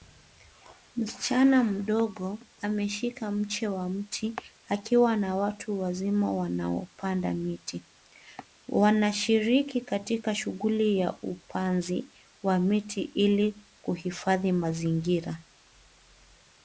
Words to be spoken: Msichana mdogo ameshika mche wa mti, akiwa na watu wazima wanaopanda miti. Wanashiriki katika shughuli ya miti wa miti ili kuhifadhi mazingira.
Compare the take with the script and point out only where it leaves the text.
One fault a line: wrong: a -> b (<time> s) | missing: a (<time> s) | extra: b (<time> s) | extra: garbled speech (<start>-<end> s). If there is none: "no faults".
wrong: miti -> upanzi (11.2 s)